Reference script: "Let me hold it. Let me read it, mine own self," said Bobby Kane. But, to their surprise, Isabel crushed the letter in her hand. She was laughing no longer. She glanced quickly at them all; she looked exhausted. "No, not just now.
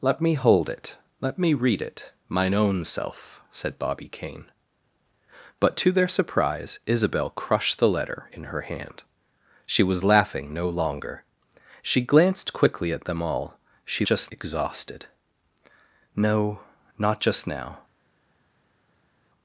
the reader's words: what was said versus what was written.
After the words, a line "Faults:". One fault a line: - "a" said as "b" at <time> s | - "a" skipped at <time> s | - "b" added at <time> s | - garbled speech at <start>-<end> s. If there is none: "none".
"Let me hold it. Let me read it, mine own self," said Bobby Kane. But, to their surprise, Isabel crushed the letter in her hand. She was laughing no longer. She glanced quickly at them all; she just exhausted. "No, not just now.
Faults:
- "looked" said as "just" at 14.0 s